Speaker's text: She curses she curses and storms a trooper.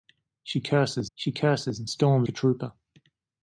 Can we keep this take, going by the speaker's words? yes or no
yes